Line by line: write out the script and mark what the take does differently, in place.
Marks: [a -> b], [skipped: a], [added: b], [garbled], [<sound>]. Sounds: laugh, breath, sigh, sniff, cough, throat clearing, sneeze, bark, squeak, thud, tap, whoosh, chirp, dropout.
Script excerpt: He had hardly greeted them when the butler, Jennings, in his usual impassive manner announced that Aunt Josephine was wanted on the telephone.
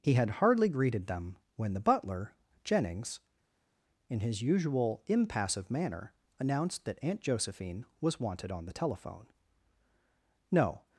He had hardly greeted them when the butler, Jennings, in his usual impassive manner announced that Aunt Josephine was wanted on the telephone. [added: No]